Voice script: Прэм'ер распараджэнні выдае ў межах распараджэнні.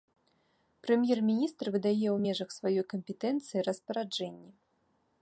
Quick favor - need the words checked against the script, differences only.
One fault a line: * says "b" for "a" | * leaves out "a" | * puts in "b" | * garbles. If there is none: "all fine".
* says "міністр" for "распараджэнні"
* puts in "сваёй кампетэнцыі"